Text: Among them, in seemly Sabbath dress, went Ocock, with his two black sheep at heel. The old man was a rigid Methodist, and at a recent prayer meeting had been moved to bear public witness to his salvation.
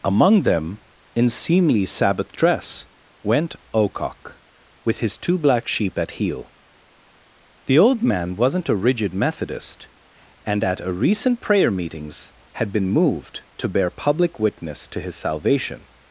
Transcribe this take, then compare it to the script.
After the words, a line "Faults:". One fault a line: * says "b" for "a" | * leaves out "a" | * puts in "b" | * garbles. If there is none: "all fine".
Among them, in seemly Sabbath dress, went Ocock, with his two black sheep at heel. The old man wasn't a rigid Methodist, and at a recent prayer meetings had been moved to bear public witness to his salvation.
Faults:
* says "wasn't" for "was"
* says "meetings" for "meeting"